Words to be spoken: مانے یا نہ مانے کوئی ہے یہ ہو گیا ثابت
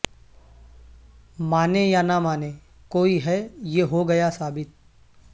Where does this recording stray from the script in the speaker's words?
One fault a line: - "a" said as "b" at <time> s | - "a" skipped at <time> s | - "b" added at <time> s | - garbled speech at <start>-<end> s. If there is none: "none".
none